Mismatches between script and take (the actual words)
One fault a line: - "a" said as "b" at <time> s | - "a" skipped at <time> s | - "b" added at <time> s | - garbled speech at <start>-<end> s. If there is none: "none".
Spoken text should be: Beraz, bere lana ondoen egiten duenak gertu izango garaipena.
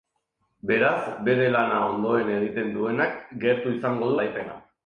none